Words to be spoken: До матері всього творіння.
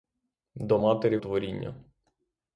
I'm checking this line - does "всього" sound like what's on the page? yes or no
no